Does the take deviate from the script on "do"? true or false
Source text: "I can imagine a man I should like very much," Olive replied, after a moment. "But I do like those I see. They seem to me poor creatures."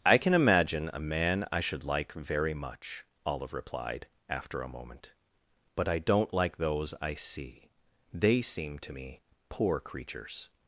true